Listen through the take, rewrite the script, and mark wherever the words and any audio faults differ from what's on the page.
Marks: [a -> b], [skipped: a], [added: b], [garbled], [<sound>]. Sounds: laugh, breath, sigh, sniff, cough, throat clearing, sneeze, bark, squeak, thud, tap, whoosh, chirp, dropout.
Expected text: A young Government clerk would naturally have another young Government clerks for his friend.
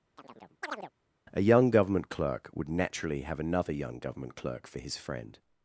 [chirp] A young Government clerk would naturally have another young Government [clerks -> clerk] for his friend.